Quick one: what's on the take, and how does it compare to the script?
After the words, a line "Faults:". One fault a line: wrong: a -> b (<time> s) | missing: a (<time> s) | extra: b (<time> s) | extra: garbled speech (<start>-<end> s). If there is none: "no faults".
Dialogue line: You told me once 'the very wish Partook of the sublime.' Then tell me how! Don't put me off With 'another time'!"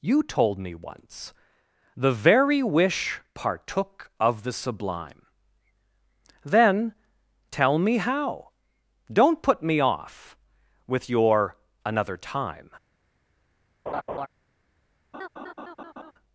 You told me once 'the very wish Partook of the sublime.' Then tell me how! Don't put me off With your 'another time'!"
Faults:
extra: your (11.1 s)